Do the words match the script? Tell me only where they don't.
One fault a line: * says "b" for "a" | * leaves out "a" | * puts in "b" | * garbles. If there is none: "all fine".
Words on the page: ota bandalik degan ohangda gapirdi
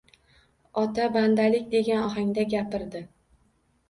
all fine